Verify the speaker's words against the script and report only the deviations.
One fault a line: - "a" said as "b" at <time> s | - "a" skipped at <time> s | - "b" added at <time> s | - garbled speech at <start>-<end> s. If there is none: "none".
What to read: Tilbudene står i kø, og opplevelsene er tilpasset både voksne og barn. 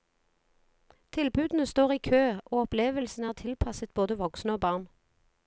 none